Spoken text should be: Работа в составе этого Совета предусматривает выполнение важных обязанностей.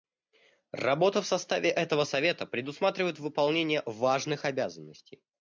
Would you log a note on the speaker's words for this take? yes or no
no